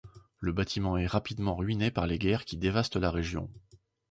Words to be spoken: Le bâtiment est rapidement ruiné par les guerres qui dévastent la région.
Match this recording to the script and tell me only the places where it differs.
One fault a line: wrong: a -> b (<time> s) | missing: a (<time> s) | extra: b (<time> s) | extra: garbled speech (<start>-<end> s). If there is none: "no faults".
no faults